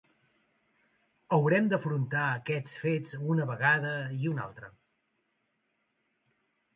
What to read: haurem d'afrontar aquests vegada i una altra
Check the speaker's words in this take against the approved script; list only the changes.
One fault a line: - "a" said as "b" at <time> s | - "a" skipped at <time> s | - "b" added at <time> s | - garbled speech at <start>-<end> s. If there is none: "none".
- "fets una" added at 2.8 s